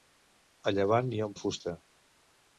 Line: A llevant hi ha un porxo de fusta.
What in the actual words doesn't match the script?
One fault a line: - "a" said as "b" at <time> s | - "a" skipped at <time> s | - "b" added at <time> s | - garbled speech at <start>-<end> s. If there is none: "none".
- "porxo" skipped at 1.4 s